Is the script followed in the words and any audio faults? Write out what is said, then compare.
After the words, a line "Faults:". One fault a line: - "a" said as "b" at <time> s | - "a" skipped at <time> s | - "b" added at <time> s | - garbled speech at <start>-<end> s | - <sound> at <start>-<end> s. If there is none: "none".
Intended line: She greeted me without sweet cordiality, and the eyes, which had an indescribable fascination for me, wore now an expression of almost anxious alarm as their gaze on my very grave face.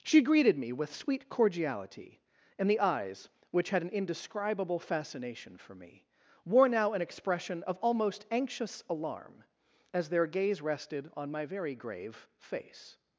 She greeted me with sweet cordiality, and the eyes, which had an indescribable fascination for me, wore now an expression of almost anxious alarm as their gaze rested on my very grave face.
Faults:
- "without" said as "with" at 0.7 s
- "rested" added at 10.6 s